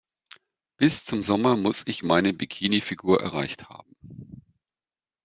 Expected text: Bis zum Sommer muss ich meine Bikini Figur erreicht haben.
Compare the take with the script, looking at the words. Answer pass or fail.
pass